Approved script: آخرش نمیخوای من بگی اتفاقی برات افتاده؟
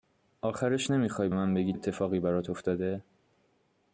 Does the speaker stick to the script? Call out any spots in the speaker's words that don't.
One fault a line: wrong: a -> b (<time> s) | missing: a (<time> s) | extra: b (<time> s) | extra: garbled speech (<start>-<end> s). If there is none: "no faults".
no faults